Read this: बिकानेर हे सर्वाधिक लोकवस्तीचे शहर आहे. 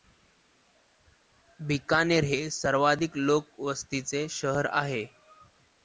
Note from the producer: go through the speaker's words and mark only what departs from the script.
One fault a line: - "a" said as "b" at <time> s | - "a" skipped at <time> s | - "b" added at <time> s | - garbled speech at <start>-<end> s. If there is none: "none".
none